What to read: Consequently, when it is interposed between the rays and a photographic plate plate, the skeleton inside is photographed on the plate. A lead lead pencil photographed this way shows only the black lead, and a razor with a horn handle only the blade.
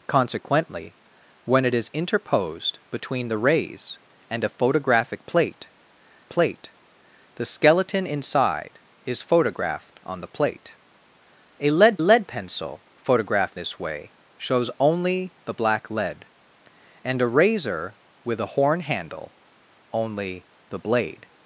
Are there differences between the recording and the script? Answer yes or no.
no